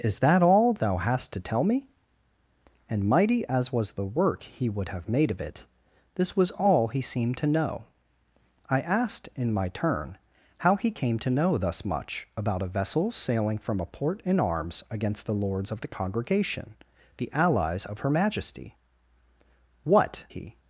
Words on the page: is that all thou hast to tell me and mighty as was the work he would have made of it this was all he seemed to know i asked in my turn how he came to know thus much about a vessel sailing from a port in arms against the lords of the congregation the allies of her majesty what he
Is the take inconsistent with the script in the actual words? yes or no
no